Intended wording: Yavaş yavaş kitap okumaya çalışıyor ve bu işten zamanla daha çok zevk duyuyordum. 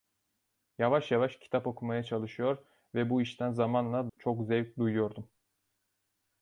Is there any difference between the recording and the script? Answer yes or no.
yes